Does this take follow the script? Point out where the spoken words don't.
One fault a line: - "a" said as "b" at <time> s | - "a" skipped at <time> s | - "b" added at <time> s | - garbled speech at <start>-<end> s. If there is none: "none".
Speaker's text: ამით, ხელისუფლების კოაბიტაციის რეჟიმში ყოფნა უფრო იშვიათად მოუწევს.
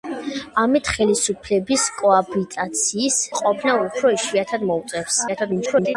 - "რეჟიმში" skipped at 3.2 s
- garbled speech at 5.3-6.0 s